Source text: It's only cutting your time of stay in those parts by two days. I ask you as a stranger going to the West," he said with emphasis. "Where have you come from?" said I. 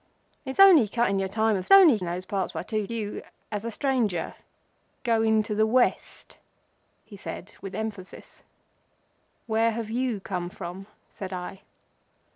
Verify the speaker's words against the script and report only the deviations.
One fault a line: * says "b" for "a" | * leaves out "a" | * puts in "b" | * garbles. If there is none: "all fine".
* says "only" for "stay"
* leaves out "days I ask"